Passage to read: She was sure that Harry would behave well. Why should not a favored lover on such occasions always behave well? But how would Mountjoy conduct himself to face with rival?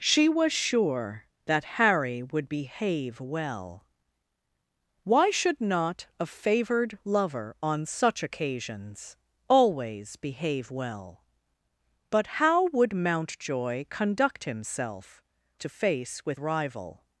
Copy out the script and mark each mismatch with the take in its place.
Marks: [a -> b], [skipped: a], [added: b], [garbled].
She was sure that Harry would behave well. Why should not a favored lover on such occasions always behave well? But how would Mountjoy conduct himself to face with rival?